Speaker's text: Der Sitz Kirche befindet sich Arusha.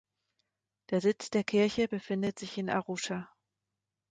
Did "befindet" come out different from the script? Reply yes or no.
no